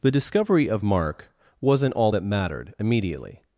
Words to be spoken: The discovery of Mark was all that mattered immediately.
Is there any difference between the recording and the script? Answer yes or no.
yes